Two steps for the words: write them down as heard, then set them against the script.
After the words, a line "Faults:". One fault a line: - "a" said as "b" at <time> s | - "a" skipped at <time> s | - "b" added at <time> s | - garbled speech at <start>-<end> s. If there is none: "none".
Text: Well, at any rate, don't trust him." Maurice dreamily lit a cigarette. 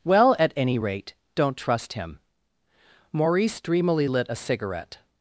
Well, at any rate, don't trust him." Maurice dreamily lit a cigarette.
Faults:
none